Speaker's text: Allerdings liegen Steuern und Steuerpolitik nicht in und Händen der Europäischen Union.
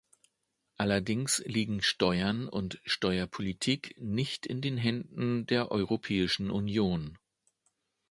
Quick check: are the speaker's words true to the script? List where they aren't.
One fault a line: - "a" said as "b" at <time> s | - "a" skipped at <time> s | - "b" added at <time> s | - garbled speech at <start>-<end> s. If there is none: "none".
- "und" said as "den" at 4.6 s